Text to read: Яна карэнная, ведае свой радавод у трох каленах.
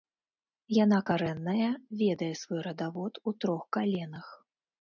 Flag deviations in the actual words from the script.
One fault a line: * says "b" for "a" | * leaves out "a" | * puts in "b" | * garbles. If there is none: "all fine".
all fine